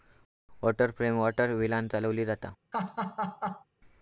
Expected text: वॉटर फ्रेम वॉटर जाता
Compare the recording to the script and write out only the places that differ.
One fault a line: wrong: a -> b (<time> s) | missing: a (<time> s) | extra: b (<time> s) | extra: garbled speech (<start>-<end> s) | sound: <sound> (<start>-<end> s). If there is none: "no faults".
extra: व्हीलांन चालवली (1.5 s)
sound: laugh (2.7-3.6 s)